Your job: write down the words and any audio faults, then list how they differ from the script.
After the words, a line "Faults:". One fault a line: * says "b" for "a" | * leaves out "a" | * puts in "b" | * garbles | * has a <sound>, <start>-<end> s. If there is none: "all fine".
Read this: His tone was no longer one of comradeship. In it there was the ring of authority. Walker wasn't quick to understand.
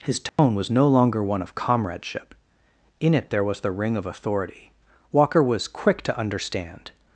His tone was no longer one of comradeship. In it there was the ring of authority. Walker was quick to understand.
Faults:
* has a dropout, 0.3-0.4 s
* says "was" for "wasn't"